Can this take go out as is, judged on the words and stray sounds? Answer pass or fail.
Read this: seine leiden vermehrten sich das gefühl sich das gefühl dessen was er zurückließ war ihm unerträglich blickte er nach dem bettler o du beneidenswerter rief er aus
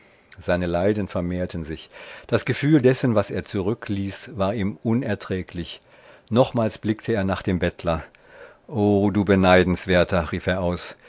fail